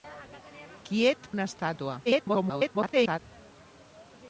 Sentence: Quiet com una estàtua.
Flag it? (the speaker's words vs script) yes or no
yes